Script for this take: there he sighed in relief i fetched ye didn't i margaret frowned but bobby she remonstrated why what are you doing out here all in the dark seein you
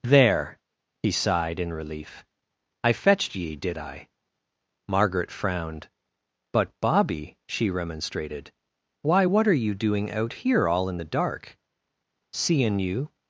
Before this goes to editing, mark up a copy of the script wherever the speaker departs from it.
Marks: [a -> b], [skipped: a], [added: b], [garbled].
there he sighed in relief i fetched ye [didn't -> did] i margaret frowned but bobby she remonstrated why what are you doing out here all in the dark seein you